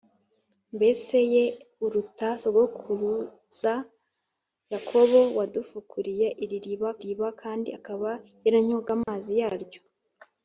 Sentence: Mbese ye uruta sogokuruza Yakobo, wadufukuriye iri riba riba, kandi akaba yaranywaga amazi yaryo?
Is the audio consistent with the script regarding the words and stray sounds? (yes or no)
no